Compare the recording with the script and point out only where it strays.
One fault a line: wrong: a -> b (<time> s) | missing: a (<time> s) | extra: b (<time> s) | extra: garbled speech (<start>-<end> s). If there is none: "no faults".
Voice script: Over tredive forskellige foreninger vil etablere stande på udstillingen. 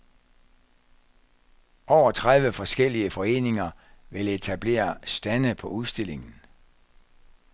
no faults